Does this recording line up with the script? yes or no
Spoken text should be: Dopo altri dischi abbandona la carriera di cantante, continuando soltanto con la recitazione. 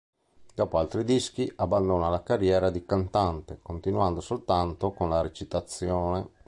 yes